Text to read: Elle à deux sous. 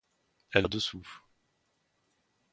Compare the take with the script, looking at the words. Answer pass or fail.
pass